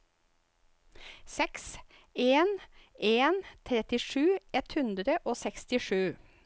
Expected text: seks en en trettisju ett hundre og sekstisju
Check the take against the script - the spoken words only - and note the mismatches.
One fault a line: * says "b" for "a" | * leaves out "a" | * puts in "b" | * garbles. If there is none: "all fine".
all fine